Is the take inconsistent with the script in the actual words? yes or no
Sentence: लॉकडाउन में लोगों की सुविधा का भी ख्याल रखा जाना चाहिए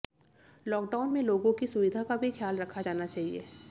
no